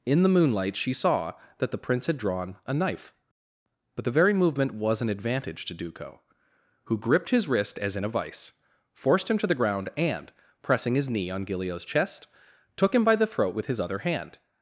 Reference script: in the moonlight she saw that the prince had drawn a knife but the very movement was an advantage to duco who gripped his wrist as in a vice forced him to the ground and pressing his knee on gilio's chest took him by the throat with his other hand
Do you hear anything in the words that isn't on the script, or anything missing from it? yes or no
no